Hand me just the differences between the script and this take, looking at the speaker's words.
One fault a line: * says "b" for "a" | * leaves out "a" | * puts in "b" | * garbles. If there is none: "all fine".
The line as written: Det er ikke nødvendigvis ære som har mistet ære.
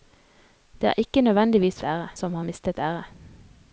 all fine